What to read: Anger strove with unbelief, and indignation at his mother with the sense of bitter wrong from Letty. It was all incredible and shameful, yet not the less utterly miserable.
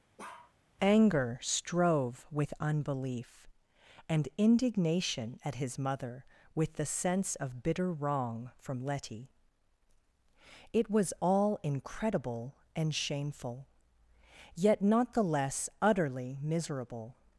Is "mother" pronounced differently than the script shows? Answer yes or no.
no